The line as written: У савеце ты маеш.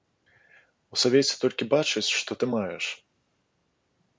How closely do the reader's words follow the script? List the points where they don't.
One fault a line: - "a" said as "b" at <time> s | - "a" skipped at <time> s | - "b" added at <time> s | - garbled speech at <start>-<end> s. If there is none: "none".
- "толькі бачаць што" added at 1.4 s